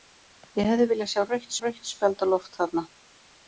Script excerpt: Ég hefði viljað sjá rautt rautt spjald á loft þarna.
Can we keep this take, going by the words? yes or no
yes